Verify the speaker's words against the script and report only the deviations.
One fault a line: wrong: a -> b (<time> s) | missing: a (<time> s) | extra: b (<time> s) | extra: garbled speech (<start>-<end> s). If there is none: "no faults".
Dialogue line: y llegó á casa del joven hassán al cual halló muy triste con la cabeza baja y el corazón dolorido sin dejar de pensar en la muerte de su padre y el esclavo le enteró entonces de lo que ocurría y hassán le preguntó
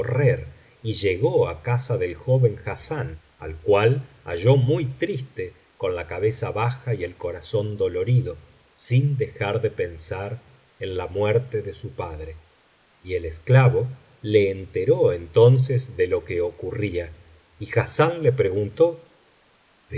no faults